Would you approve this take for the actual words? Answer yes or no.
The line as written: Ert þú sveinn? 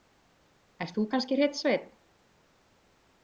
no